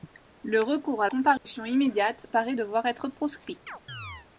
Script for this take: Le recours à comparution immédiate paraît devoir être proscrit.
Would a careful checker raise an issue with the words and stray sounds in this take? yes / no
yes